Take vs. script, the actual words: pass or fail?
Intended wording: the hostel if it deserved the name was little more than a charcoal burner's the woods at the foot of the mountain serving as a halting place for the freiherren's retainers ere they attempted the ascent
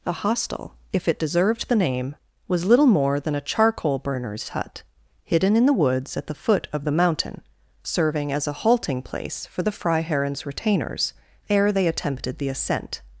fail